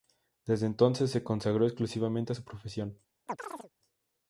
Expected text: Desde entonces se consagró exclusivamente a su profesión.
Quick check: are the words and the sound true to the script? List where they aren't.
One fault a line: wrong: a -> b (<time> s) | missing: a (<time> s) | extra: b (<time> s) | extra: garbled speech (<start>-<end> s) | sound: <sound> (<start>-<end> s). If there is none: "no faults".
sound: chirp (3.3-3.7 s)